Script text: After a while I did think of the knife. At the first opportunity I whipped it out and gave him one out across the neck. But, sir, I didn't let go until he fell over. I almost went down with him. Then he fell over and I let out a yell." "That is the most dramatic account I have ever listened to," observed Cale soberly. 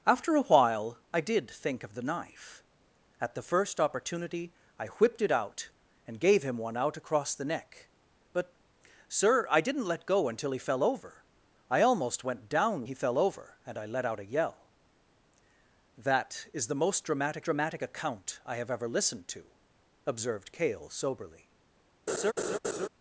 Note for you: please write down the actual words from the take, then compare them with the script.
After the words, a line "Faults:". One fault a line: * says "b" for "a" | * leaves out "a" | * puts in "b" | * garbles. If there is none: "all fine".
After a while I did think of the knife. At the first opportunity I whipped it out and gave him one out across the neck. But, sir, I didn't let go until he fell over. I almost went down he fell over and I let out a yell." "That is the most dramatic dramatic account I have ever listened to," observed Cale soberly.
Faults:
* leaves out "with him Then"
* puts in "dramatic"